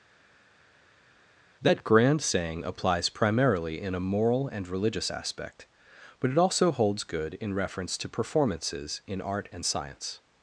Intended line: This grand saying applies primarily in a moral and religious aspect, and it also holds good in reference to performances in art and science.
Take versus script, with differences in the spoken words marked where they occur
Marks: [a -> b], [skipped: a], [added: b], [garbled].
[This -> That] grand saying applies primarily in a moral and religious aspect, [and -> but] it also holds good in reference to performances in art and science.